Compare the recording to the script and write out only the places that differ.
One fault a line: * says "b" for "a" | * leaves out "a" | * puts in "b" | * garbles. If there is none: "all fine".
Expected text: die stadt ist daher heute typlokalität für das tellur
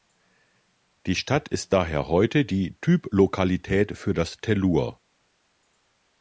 * puts in "die"